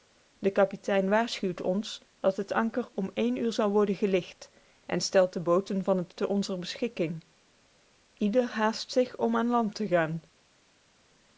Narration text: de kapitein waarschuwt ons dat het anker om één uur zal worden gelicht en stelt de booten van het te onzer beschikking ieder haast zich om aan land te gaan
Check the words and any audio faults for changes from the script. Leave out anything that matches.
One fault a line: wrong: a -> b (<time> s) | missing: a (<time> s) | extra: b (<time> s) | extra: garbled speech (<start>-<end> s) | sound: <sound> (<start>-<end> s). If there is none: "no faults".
no faults